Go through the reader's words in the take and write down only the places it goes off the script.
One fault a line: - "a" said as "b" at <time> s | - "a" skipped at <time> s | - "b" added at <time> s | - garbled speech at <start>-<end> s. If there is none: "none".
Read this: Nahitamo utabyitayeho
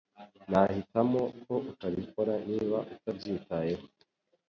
- "ko utabikora niba" added at 1.4 s